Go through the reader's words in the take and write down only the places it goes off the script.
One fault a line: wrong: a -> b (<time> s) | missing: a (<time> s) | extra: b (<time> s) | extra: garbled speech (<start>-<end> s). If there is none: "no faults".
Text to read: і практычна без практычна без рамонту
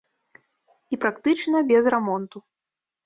missing: практычна без (1.8 s)